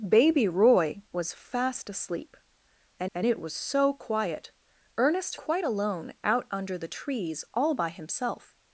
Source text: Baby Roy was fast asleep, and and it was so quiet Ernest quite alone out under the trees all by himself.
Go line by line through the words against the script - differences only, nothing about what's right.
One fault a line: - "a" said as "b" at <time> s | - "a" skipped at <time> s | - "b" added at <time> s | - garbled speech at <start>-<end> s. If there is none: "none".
none